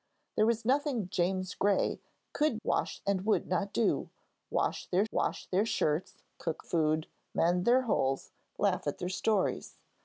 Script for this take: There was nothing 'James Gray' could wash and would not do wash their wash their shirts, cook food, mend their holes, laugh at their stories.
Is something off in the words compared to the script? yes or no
no